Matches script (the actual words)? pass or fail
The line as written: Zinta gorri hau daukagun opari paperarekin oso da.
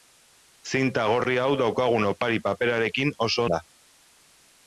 pass